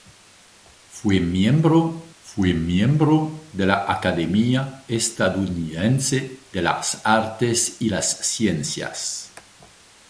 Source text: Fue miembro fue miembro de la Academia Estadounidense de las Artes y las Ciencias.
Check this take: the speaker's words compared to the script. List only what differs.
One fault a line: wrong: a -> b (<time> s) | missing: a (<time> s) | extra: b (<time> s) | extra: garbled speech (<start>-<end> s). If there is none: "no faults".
no faults